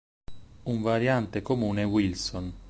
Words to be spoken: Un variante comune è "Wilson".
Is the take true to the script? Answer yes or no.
yes